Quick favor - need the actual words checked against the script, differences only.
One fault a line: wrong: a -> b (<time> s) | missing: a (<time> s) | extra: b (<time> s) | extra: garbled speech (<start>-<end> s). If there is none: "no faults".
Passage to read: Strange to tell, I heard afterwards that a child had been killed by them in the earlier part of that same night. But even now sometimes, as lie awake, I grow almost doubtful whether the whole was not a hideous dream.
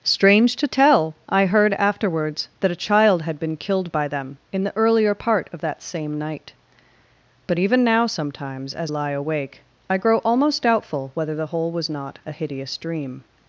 no faults